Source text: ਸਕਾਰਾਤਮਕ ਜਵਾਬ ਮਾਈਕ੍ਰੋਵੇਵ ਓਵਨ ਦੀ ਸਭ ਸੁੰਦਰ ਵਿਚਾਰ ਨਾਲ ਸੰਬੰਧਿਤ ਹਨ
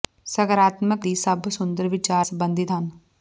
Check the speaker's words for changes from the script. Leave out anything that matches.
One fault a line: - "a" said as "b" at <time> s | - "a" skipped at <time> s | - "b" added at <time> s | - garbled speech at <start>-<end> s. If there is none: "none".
- "ਜਵਾਬ ਮਾਈਕ੍ਰੋਵੇਵ ਓਵਨ" skipped at 1.1 s
- "ਨਾਲ" skipped at 2.3 s